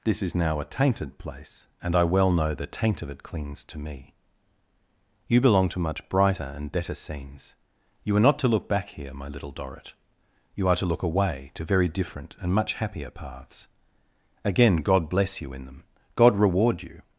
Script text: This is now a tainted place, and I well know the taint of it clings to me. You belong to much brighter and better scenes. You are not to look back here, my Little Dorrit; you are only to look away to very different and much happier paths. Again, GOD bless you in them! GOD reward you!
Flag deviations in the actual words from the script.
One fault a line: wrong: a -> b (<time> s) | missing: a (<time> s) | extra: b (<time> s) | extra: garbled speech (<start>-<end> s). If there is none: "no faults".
missing: only (10.8 s)